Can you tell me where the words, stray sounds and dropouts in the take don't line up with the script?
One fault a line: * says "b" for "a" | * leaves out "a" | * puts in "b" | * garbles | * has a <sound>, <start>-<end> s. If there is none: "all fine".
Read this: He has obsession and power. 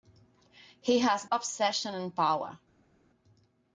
all fine